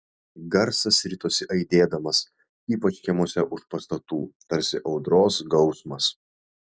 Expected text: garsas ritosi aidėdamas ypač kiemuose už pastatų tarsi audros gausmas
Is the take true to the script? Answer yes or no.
yes